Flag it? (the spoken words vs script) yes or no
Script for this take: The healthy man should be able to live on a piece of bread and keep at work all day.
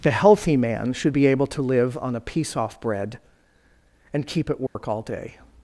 yes